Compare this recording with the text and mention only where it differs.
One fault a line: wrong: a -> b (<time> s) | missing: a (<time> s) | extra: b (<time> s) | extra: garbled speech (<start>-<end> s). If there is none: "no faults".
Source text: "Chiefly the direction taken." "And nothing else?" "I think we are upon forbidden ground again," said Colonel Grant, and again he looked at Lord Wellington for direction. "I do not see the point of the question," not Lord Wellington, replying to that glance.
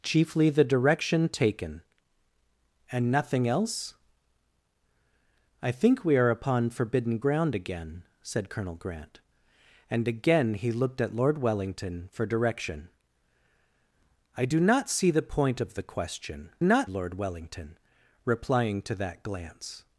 no faults